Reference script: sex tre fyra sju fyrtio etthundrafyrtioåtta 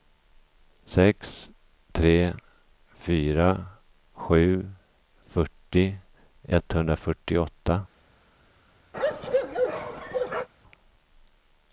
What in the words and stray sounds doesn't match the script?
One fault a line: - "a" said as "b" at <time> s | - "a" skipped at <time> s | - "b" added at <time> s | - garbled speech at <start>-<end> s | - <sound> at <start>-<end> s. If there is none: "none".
- bark at 8.9-10.5 s